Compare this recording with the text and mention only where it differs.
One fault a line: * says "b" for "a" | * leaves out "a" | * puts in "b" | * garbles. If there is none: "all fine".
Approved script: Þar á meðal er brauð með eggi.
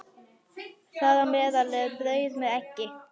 all fine